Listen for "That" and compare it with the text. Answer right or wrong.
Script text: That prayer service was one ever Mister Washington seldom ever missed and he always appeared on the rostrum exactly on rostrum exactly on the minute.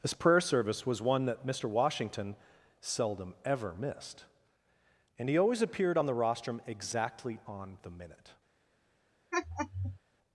wrong